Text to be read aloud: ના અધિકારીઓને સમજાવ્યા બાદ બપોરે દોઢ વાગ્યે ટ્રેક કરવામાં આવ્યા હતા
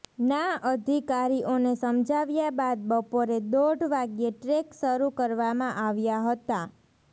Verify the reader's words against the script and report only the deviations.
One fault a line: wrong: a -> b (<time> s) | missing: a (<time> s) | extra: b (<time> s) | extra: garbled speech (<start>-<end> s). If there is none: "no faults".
extra: શરૂ (4.8 s)